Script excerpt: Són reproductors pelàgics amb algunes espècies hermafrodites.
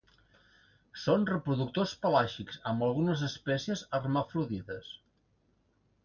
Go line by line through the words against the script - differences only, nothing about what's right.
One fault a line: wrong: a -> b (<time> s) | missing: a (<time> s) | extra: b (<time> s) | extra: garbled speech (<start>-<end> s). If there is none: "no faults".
no faults